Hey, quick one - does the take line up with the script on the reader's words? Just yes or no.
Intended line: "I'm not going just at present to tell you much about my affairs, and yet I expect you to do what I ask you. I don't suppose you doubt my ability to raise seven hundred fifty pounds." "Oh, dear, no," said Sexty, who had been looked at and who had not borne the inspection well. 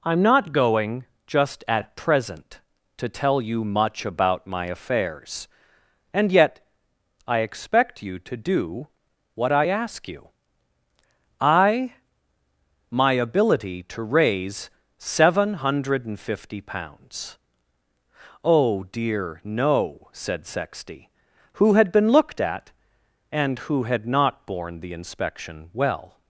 no